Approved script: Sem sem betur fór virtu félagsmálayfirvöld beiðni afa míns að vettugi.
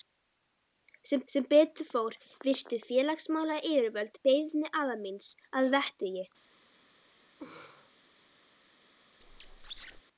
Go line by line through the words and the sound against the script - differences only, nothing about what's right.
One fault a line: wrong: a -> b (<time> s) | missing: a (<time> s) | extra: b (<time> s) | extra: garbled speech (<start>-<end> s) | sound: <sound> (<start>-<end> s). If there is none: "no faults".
sound: laugh (7.4-7.9 s)
sound: squeak (9.2-10.0 s)